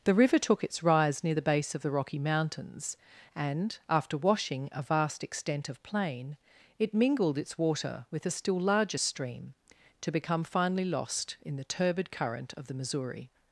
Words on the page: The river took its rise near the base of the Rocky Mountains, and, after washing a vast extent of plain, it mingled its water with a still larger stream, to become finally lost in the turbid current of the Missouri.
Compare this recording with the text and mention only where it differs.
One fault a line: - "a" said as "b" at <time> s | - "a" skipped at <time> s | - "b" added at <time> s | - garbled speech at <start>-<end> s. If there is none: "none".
none